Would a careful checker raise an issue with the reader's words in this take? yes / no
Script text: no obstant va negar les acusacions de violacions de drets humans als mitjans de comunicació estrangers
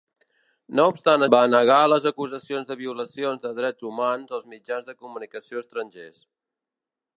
no